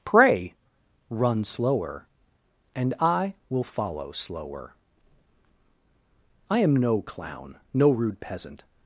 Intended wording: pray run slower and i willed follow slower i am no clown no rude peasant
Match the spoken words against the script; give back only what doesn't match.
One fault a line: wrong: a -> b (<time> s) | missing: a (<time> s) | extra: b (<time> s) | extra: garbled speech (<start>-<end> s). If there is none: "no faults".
wrong: willed -> will (3.5 s)